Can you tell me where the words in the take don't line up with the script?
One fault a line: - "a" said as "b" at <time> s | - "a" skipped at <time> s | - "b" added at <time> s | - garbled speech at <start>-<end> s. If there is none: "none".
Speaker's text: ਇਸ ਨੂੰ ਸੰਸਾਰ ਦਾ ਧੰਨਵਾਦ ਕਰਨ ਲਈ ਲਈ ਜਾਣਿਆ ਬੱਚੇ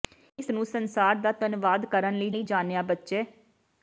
none